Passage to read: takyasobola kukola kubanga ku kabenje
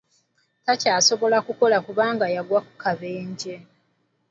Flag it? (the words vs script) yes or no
yes